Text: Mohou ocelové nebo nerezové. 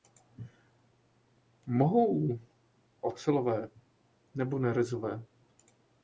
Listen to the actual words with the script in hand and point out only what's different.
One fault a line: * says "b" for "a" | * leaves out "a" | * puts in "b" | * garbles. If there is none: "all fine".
all fine